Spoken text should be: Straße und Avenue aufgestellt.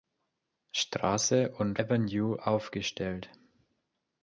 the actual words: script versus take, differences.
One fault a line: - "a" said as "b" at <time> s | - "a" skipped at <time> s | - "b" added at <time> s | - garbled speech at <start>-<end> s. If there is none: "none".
none